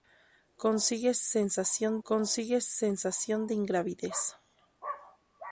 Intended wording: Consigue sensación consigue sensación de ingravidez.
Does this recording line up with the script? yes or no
yes